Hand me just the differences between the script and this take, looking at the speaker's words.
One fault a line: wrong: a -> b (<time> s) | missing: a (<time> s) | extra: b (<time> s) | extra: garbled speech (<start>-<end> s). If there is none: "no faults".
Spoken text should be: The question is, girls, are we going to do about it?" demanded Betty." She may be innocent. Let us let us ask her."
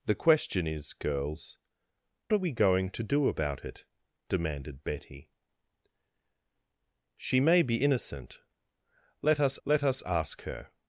no faults